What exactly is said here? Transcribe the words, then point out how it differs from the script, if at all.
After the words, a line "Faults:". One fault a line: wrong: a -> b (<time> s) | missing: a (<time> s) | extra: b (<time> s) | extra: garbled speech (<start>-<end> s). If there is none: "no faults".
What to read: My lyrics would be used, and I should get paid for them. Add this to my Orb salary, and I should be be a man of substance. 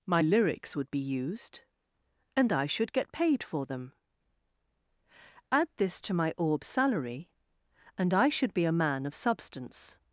My lyrics would be used, and I should get paid for them. Add this to my Orb salary, and I should be a man of substance.
Faults:
missing: be (8.6 s)